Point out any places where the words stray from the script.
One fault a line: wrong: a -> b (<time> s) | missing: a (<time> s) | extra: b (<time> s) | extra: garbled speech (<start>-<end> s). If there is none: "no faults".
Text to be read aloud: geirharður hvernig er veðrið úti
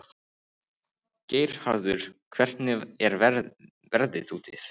no faults